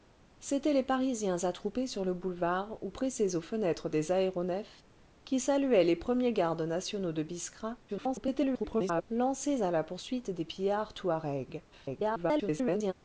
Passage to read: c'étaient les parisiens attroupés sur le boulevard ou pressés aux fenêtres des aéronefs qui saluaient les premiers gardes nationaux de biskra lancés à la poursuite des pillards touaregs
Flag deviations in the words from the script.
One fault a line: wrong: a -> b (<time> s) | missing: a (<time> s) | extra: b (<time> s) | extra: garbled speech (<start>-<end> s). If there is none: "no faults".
extra: garbled speech (7.9-9.0 s)
extra: garbled speech (11.7-12.9 s)